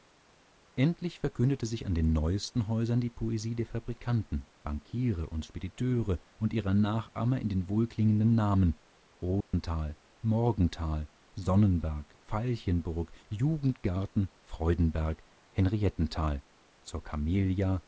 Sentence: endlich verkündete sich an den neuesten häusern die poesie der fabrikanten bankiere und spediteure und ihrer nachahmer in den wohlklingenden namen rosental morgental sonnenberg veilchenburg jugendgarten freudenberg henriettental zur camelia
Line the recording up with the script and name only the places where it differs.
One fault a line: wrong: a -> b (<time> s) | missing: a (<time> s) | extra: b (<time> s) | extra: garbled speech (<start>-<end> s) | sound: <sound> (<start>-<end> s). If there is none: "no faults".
sound: dropout (9.4-9.5 s)